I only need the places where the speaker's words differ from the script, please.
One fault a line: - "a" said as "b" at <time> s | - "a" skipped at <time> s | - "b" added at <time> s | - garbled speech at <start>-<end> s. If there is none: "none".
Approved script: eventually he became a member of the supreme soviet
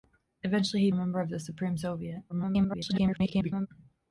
- "became" skipped at 0.9 s
- garbled speech at 2.3-3.7 s